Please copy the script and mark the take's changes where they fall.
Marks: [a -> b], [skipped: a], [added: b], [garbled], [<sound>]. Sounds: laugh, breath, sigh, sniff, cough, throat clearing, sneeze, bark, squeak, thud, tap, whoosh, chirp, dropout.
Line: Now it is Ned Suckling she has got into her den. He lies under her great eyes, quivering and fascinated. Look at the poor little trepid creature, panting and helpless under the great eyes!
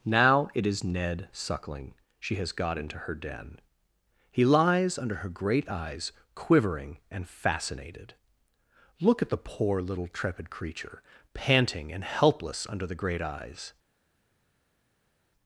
Now it is Ned Suckling she has got into her den. He lies under her great eyes, quivering and fascinated. Look at the poor little trepid creature, panting and helpless under the great eyes!